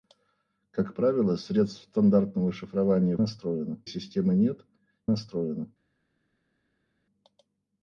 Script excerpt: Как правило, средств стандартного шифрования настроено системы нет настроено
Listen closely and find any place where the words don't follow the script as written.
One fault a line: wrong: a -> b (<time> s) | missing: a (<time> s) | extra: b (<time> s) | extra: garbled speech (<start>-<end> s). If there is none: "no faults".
no faults